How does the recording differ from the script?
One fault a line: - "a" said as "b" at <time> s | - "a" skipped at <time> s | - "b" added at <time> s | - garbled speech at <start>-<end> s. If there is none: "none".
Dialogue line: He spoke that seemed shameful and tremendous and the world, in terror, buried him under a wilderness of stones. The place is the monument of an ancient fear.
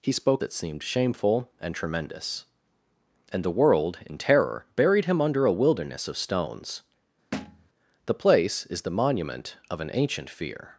none